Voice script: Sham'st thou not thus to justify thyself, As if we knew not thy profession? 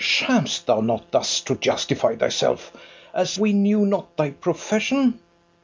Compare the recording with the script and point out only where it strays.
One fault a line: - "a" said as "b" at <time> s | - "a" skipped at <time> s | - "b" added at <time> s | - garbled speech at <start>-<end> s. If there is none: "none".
- "if" skipped at 3.4 s